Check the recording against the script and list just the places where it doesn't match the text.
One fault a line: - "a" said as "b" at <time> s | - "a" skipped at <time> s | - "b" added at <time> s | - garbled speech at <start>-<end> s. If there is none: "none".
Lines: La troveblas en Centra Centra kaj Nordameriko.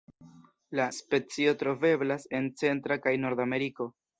- "specio" added at 1.0 s
- "Centra" skipped at 3.0 s